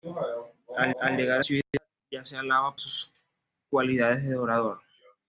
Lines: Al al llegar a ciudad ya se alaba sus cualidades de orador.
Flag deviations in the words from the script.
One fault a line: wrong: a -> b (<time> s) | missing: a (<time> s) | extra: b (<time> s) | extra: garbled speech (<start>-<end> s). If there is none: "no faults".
no faults